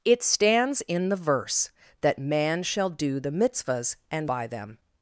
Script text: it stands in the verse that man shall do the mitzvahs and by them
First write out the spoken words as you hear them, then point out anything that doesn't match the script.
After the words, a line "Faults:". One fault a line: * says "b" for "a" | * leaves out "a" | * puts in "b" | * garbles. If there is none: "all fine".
it stands in the verse that man shall do the mitzvahs and by them
Faults:
all fine